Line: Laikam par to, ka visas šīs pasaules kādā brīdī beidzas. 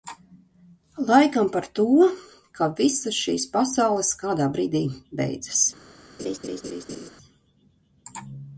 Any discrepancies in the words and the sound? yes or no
yes